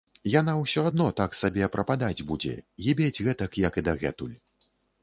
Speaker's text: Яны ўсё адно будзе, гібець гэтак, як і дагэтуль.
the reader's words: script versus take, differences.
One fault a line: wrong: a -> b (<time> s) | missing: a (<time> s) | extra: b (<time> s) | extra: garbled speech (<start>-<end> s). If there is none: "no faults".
wrong: Яны -> Яна (0.3 s)
extra: так сабе прападаць (1.2 s)